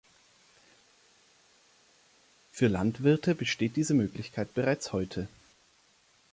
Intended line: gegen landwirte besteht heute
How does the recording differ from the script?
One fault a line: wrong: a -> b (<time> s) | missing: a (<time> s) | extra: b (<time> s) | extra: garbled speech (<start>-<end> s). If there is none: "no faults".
wrong: gegen -> für (2.6 s)
extra: diese möglichkeit bereits (3.7 s)